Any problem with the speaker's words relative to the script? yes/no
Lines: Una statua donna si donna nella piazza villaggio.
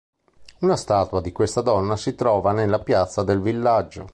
yes